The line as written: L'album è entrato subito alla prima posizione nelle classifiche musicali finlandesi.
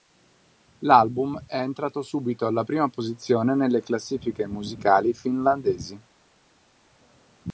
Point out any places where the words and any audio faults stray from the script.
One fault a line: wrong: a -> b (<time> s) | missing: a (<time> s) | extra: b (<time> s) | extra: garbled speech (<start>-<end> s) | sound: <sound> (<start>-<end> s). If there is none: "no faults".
no faults